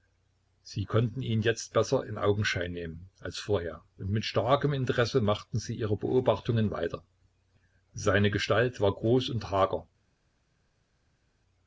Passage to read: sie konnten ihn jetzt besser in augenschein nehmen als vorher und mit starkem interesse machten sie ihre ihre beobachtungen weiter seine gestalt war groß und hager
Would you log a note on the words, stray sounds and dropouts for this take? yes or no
yes